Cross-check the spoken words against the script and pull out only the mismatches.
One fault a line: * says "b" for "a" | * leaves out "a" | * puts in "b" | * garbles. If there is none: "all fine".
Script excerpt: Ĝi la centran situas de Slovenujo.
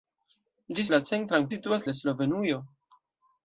all fine